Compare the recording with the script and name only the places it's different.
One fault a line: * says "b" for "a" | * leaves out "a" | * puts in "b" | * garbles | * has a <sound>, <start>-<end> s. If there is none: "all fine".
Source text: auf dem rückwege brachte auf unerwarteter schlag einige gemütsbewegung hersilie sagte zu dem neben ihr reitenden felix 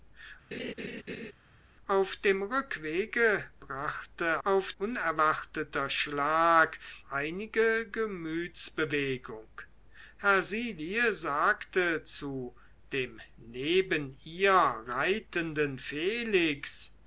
* has a laugh, 0.5-1.3 s